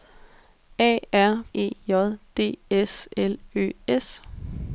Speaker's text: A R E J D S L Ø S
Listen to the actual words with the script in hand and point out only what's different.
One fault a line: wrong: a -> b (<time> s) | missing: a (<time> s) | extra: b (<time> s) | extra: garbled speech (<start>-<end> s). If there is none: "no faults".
no faults